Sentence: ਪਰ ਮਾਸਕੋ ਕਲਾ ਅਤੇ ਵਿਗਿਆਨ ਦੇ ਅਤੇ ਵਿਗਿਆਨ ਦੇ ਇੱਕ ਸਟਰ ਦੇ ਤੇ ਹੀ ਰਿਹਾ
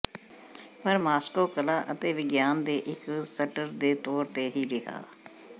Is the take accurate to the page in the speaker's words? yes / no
no